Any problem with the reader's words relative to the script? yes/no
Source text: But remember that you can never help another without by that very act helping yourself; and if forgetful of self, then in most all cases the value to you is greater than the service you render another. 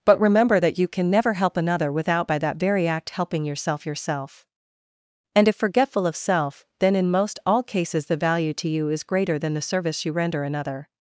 yes